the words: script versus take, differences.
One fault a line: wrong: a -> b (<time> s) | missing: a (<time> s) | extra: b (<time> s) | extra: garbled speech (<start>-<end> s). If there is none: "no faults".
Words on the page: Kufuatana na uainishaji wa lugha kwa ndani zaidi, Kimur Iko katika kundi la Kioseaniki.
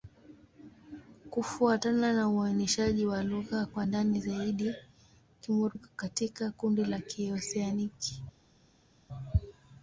no faults